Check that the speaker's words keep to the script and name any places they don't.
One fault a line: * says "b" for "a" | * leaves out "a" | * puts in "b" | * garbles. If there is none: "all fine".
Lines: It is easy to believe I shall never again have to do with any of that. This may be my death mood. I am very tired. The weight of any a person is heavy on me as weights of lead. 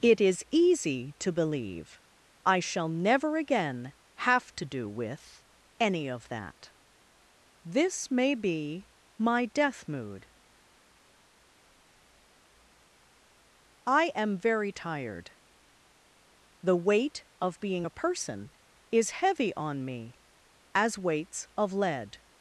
* says "being" for "any"